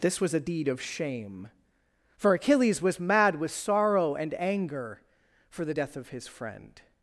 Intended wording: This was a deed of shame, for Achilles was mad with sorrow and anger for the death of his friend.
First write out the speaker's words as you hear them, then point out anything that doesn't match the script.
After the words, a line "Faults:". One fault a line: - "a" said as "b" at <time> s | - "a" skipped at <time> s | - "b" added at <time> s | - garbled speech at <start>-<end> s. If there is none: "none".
This was a deed of shame, for Achilles was mad with sorrow and anger for the death of his friend.
Faults:
none